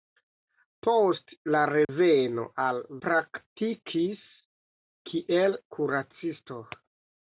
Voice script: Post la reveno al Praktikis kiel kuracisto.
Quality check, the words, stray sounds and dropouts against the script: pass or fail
fail